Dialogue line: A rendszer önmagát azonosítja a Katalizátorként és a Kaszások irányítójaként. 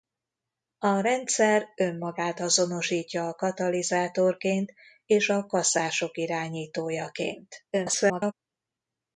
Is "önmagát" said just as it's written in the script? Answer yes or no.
yes